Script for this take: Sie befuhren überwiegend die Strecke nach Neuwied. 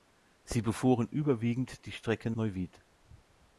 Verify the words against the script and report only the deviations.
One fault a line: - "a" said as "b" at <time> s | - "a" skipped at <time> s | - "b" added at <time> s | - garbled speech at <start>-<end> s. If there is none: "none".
- "nach" skipped at 2.3 s